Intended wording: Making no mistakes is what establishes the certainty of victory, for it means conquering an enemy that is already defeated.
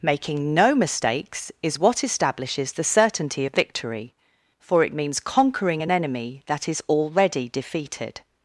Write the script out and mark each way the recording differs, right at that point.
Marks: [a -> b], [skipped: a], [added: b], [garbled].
Making no mistakes is what establishes the certainty of victory, for it means conquering an enemy that is already defeated.